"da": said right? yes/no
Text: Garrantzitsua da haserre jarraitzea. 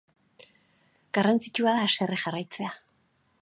yes